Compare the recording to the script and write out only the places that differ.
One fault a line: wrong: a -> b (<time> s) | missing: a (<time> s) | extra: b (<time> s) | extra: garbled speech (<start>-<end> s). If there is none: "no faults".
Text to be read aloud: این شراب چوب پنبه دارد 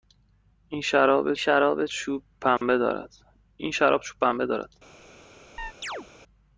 extra: شراب (1.4 s)